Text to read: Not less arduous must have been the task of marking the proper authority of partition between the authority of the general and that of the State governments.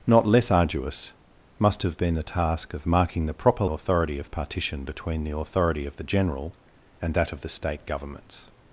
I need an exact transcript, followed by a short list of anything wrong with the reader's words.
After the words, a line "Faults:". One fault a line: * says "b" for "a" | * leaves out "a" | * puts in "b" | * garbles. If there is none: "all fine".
Not less arduous must have been the task of marking the proper authority of partition between the authority of the general and that of the State governments.
Faults:
all fine